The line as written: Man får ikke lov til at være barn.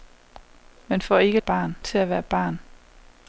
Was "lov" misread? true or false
true